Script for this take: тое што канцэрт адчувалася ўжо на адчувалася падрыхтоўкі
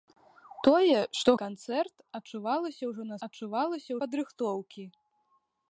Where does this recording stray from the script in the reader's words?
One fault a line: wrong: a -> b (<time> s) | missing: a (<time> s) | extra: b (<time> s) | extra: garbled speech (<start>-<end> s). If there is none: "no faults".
no faults